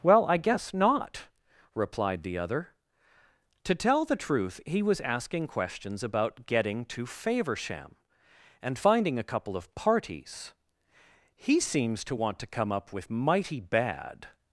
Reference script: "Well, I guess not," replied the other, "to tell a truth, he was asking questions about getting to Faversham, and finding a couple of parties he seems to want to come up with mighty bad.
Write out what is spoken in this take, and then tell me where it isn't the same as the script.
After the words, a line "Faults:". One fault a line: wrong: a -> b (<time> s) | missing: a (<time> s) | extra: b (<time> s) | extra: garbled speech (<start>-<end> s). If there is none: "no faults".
"Well, I guess not," replied the other, "to tell the truth, he was asking questions about getting to Faversham, and finding a couple of parties he seems to want to come up with mighty bad.
Faults:
wrong: a -> the (4.0 s)